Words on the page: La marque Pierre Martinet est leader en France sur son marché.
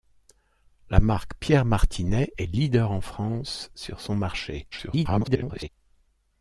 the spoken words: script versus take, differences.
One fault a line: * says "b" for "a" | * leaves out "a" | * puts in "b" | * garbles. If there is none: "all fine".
* garbles